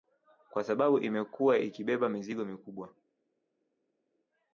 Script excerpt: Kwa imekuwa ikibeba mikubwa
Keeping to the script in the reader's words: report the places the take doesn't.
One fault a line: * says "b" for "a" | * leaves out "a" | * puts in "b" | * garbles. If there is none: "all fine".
* puts in "sababu"
* puts in "mizigo"